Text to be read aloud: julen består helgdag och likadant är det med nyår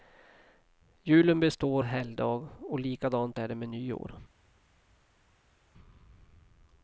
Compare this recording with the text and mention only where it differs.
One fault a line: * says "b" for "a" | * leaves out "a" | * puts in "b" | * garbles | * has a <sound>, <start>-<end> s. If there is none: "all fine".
all fine